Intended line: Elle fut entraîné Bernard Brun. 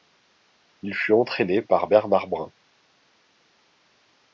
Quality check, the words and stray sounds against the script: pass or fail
fail